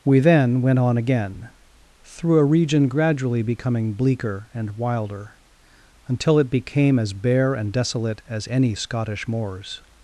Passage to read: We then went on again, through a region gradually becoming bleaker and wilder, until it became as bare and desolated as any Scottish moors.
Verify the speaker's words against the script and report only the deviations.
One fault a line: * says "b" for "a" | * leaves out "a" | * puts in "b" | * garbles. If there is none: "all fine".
* says "desolate" for "desolated"